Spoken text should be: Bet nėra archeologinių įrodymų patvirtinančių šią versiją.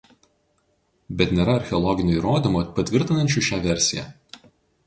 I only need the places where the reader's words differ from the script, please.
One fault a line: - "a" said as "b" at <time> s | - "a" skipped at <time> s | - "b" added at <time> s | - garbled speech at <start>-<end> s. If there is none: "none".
none